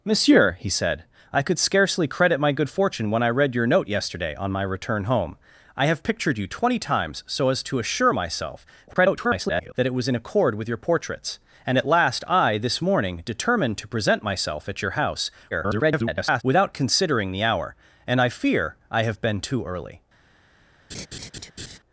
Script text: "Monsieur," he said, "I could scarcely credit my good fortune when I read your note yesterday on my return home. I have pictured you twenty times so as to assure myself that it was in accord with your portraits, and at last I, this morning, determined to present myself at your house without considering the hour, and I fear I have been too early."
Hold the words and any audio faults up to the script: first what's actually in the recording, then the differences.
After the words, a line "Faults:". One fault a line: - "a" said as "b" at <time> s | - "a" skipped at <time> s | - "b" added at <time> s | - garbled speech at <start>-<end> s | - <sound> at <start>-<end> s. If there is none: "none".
"Monsieur," he said, "I could scarcely credit my good fortune when I read your note yesterday on my return home. I have pictured you twenty times so as to assure myself [garbled] that it was in accord with your portraits, and at last I, this morning, determined to present myself at your house [garbled] without considering the hour, and I fear I have been too early."
Faults:
- garbled speech at 8.9-9.7 s
- garbled speech at 15.5-16.4 s
- laugh at 20.9-21.8 s